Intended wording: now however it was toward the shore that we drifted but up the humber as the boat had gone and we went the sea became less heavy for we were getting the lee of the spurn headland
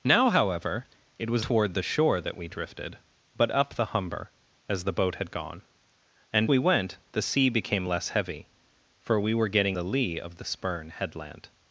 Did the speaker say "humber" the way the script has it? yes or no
yes